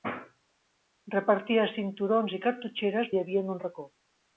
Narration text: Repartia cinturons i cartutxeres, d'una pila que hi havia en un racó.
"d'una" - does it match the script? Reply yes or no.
no